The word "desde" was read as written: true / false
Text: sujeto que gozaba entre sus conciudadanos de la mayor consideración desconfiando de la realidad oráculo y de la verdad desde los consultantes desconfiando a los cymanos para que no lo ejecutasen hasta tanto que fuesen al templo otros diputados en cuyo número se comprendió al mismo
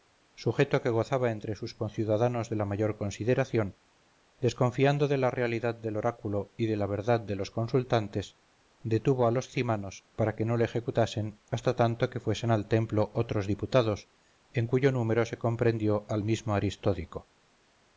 false